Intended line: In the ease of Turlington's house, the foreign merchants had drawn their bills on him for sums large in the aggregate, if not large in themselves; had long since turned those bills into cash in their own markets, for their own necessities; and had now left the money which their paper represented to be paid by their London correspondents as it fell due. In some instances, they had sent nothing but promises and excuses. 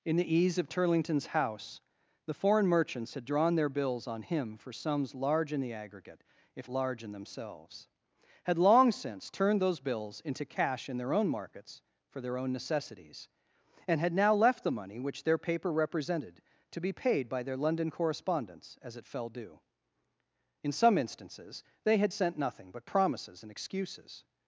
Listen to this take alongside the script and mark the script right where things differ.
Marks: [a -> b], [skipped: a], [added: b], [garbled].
In the ease of Turlington's house, the foreign merchants had drawn their bills on him for sums large in the aggregate, if [skipped: not] large in themselves; had long since turned those bills into cash in their own markets, for their own necessities; and had now left the money which their paper represented to be paid by their London correspondents as it fell due. In some instances, they had sent nothing but promises and excuses.